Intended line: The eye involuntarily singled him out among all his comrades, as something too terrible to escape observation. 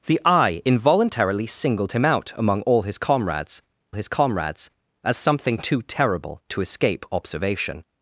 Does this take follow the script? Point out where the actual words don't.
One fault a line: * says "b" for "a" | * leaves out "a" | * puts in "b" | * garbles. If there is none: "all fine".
* puts in "his comrades"